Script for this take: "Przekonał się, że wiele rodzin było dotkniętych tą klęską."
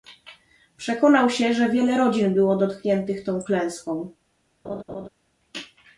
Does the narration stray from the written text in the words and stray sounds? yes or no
yes